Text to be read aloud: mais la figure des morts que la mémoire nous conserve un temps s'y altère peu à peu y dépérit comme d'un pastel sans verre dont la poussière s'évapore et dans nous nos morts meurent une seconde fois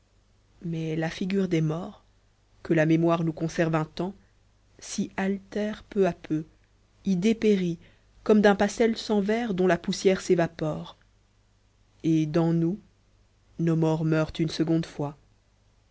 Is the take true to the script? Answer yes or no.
yes